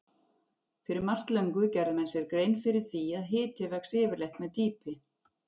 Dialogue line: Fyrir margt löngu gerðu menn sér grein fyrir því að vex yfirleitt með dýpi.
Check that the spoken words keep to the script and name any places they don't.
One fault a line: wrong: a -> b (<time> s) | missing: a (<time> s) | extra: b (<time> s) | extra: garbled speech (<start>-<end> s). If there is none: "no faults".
extra: hiti (3.3 s)